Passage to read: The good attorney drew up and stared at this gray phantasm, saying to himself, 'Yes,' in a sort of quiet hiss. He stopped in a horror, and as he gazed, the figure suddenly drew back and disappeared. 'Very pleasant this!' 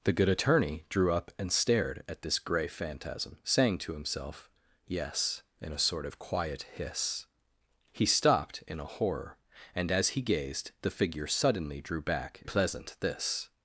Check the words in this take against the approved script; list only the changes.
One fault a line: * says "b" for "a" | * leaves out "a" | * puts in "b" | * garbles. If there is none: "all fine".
* leaves out "and disappeared Very"